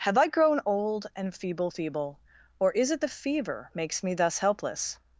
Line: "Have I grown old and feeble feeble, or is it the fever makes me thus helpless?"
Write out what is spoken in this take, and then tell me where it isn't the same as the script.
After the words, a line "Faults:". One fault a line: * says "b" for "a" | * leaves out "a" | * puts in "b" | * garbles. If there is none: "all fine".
"Have I grown old and feeble feeble, or is it the fever makes me thus helpless?"
Faults:
all fine